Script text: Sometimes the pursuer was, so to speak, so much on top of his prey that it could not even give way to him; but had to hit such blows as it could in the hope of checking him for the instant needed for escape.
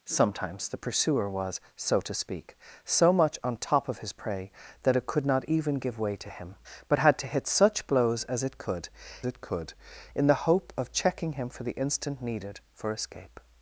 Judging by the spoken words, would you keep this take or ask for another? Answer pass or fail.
fail